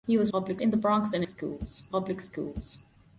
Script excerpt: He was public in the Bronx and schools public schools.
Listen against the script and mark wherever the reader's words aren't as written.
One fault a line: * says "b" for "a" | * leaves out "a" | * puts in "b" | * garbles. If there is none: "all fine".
all fine